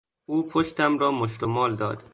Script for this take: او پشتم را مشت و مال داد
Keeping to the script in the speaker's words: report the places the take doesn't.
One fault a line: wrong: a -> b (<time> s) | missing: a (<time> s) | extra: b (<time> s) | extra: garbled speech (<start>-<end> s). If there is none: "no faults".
no faults